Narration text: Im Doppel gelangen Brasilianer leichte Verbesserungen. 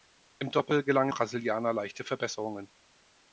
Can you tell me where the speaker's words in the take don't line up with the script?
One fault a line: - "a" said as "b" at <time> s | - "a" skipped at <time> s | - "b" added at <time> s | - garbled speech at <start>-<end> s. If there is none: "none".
none